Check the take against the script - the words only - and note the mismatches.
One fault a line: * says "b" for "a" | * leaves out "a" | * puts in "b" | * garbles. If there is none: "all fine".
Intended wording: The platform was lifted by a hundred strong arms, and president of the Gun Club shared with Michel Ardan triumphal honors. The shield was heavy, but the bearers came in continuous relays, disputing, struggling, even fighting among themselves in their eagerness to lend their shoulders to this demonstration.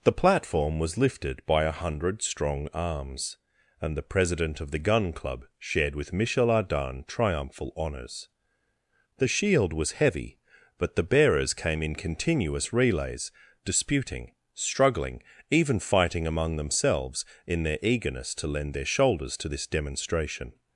* puts in "the"